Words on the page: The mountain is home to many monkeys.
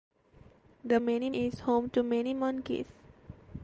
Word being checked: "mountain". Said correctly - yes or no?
no